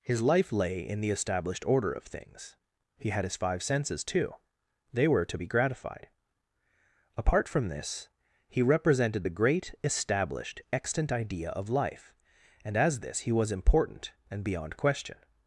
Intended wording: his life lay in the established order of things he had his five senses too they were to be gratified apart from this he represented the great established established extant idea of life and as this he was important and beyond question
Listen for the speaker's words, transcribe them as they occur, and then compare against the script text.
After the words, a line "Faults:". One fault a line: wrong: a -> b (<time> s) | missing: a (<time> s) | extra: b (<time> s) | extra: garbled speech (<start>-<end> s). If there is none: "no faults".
his life lay in the established order of things he had his five senses too they were to be gratified apart from this he represented the great established extant idea of life and as this he was important and beyond question
Faults:
missing: established (10.6 s)